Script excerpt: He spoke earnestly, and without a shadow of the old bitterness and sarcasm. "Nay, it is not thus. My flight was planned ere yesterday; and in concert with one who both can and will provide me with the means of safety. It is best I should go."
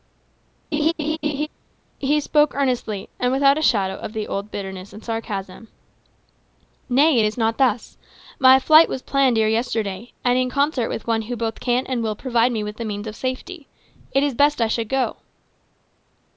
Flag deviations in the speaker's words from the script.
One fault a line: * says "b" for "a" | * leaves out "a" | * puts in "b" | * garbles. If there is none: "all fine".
all fine